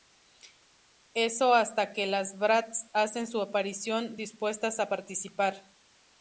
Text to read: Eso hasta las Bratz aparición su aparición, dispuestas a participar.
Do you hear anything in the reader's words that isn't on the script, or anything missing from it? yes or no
yes